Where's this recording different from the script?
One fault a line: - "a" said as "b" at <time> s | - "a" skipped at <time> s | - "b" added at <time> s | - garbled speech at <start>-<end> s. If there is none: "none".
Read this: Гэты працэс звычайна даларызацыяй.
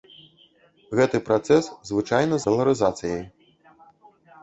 none